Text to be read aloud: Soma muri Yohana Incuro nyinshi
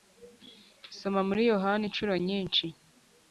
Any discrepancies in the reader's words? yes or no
no